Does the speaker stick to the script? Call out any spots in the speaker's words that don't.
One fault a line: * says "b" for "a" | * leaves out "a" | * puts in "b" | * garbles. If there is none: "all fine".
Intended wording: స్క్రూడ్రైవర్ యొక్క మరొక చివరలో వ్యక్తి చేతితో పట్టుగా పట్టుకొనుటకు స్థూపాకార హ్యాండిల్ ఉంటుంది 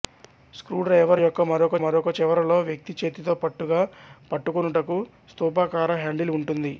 * puts in "మరొక"